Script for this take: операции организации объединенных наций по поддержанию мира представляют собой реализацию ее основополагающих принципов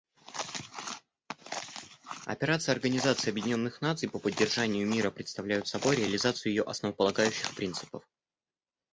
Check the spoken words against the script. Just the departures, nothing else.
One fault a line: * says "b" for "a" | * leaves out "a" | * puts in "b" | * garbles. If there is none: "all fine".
all fine